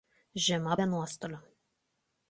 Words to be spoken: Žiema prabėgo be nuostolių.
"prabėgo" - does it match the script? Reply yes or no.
no